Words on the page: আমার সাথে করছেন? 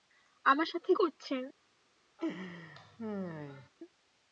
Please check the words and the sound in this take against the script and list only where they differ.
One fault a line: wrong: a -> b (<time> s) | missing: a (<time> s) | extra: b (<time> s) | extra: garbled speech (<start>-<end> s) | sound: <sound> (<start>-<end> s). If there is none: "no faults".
sound: laugh (2.2-3.7 s)